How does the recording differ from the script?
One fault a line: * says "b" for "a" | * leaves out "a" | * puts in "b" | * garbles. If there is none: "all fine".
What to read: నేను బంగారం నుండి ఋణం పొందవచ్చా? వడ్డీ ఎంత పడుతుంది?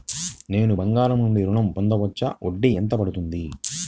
all fine